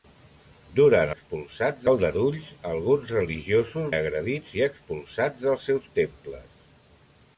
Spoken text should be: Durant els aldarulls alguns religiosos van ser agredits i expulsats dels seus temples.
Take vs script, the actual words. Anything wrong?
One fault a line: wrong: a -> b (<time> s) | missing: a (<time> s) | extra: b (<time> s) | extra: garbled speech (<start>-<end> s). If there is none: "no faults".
wrong: els -> expulsats (1.1 s)
missing: van ser (3.9 s)